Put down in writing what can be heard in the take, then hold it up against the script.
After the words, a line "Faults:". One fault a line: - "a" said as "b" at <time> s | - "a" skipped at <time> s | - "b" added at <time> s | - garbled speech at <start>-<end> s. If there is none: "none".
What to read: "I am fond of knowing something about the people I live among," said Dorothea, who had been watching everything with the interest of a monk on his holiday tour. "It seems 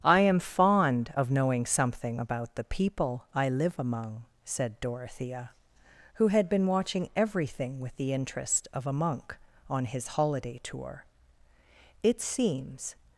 "I am fond of knowing something about the people I live among," said Dorothea, who had been watching everything with the interest of a monk on his holiday tour. "It seems
Faults:
none